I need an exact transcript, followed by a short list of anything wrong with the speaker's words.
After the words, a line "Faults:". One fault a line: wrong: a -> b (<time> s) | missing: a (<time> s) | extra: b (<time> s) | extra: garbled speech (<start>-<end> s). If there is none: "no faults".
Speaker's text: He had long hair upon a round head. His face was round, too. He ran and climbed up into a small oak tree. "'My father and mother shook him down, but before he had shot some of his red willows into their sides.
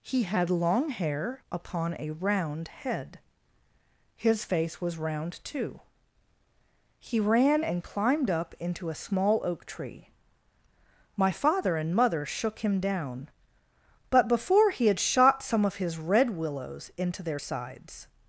He had long hair upon a round head. His face was round, too. He ran and climbed up into a small oak tree. "'My father and mother shook him down, but before he had shot some of his red willows into their sides.
Faults:
no faults